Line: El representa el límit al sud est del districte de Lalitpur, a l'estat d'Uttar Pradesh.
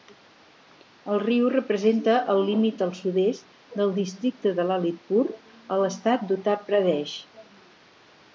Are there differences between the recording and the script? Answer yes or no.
yes